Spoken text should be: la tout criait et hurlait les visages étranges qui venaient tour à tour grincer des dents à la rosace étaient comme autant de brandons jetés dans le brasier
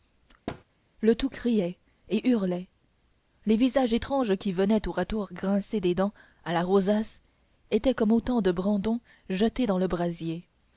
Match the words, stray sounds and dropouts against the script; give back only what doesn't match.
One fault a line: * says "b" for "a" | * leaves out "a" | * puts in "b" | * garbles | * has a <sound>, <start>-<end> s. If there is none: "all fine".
* has a thud, 0.5-0.6 s
* says "le" for "la"